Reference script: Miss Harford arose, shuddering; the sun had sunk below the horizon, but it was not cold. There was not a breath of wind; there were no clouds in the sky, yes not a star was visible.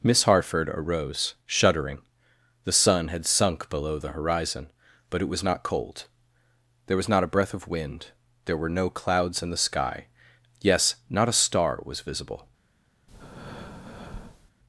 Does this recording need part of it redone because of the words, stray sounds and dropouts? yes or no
yes